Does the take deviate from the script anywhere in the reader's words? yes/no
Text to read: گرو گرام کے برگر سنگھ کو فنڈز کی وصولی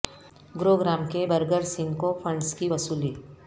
no